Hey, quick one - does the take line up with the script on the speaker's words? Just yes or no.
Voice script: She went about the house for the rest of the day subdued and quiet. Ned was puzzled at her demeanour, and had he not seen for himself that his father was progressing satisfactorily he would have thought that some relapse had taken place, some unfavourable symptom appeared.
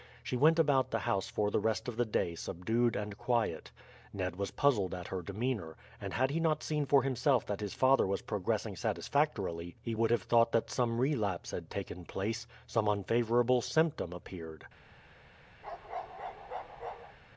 yes